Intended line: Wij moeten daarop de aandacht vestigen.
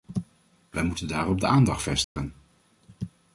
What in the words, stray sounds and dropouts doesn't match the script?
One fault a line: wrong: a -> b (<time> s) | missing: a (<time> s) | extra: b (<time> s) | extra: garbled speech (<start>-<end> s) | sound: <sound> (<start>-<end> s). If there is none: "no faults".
sound: dropout (2.0-2.2 s)